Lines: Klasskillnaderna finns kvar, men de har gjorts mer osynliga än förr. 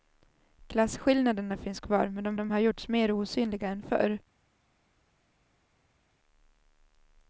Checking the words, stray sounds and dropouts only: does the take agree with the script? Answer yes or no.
no